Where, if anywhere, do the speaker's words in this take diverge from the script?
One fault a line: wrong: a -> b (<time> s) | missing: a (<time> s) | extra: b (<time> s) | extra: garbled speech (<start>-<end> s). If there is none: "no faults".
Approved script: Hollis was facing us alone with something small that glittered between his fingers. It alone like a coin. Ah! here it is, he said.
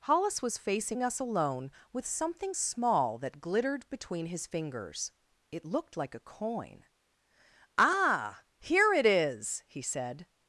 wrong: alone -> looked (5.7 s)